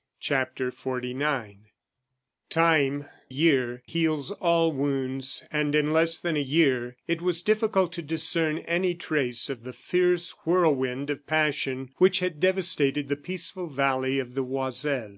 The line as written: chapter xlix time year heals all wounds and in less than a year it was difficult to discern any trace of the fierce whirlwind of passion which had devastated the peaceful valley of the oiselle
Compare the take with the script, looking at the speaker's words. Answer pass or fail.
pass